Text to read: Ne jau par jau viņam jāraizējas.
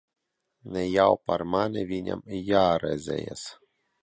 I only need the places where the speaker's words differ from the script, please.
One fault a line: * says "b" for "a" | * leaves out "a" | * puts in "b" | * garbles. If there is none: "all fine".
* says "mani" for "jau"